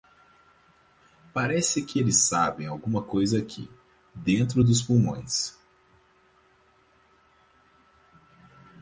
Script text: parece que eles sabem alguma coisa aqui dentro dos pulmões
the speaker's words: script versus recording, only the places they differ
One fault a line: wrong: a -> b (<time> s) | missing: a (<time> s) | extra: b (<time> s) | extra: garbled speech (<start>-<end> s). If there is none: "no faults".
no faults